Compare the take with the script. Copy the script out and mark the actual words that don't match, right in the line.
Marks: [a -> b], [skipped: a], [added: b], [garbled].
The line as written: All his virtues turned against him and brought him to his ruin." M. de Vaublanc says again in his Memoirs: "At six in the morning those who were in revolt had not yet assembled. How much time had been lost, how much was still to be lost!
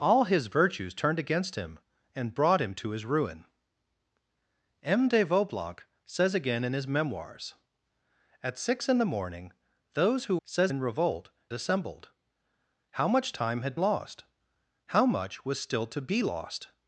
All his virtues turned against him and brought him to his ruin." M. de Vaublanc says again in his Memoirs: "At six in the morning those who [were -> says] in revolt [skipped: had not yet] assembled. How much time had [skipped: been] lost, how much was still to be lost!